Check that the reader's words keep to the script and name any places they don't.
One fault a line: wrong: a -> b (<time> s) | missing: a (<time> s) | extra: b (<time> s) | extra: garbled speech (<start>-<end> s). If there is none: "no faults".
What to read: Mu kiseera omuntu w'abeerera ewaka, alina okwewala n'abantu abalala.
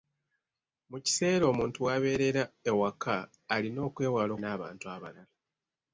no faults